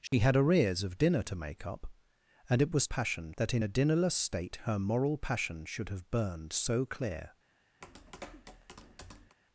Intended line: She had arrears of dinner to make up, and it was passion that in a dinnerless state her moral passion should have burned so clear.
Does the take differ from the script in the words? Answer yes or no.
no